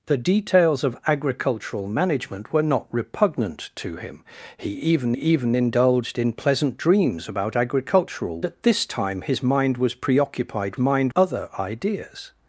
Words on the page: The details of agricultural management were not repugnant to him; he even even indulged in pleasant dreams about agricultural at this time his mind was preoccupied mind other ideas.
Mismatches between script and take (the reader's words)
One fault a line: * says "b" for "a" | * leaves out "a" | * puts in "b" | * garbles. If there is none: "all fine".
all fine